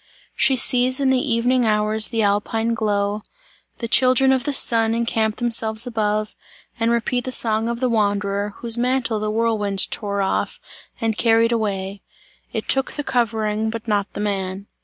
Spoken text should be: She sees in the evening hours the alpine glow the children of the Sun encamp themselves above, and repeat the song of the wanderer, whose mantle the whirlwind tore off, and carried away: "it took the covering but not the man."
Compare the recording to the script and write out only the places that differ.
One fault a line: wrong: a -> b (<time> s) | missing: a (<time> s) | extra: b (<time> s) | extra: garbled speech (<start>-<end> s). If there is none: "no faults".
no faults